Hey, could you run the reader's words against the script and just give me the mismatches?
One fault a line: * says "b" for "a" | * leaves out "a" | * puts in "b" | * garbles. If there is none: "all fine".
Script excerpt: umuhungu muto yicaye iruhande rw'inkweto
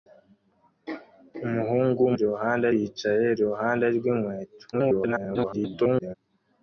* says "iruhande" for "muto"
* garbles